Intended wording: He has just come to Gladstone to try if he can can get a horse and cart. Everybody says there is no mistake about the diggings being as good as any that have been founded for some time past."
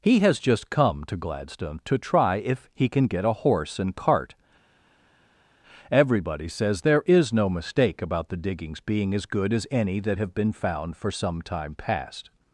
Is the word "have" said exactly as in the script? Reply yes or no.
yes